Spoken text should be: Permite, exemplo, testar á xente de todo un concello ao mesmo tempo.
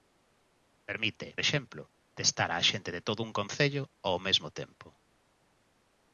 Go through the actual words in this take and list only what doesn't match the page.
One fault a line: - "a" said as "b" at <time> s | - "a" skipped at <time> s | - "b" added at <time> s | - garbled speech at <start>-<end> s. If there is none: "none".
none